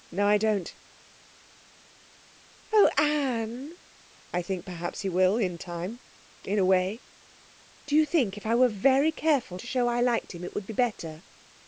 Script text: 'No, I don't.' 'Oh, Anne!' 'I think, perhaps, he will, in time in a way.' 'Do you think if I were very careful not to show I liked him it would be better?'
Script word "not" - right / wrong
wrong